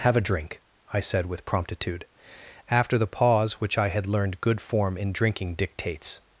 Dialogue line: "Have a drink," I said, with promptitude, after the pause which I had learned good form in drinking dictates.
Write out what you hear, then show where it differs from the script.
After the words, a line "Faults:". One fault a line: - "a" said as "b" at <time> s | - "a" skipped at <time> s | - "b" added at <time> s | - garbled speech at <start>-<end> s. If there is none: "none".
"Have a drink," I said, with promptitude, after the pause which I had learned good form in drinking dictates.
Faults:
none